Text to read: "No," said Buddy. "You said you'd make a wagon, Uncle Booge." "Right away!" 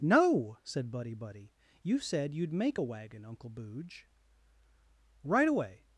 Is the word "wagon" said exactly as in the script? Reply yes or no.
yes